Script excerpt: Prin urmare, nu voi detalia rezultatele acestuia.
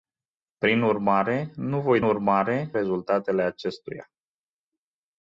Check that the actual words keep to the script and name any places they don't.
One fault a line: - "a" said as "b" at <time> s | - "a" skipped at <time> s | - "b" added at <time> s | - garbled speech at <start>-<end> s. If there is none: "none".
- "detalia" said as "urmare" at 2.0 s